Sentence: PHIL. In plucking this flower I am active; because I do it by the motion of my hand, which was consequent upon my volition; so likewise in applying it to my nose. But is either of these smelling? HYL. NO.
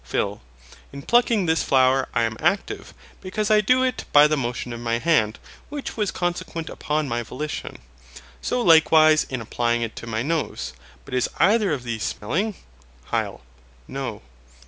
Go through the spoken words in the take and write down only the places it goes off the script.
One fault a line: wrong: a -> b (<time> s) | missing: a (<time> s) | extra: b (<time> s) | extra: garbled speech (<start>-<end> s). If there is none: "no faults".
no faults